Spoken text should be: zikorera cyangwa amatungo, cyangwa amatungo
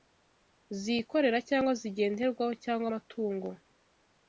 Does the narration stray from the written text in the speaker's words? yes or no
yes